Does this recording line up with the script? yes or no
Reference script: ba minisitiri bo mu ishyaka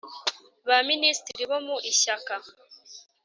yes